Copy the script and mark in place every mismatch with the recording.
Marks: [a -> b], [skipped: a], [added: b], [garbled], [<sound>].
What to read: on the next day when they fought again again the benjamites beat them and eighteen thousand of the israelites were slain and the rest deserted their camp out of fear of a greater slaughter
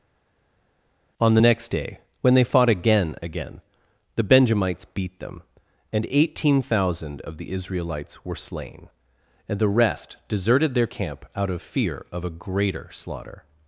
on the next day when they fought again again the benjamites beat them and eighteen thousand of the israelites were slain and the rest deserted their camp out of fear of a greater slaughter